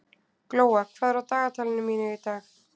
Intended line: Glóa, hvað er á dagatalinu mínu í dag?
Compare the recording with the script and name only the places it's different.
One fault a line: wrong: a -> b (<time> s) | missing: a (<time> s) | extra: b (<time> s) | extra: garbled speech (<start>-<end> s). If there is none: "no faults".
no faults